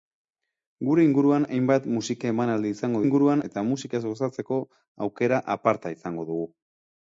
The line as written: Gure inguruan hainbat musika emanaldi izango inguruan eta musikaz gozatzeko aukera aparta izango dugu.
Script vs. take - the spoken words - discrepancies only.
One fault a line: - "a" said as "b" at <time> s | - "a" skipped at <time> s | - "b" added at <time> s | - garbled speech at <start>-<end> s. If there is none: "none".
none